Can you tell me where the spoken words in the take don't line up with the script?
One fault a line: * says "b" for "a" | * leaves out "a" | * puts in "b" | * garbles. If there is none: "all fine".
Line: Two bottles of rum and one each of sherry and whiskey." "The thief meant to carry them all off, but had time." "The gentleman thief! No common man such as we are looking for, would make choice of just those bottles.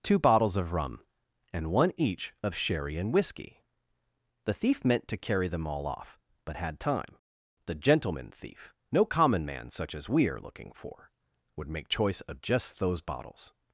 all fine